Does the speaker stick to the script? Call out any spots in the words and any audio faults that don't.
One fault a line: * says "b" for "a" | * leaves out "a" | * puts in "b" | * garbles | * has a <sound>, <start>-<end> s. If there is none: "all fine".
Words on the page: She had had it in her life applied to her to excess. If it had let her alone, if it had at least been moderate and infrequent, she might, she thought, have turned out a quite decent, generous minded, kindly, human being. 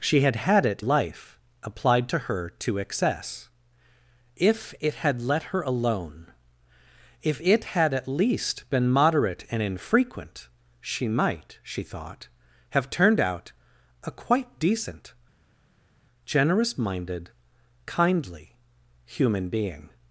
* leaves out "in her"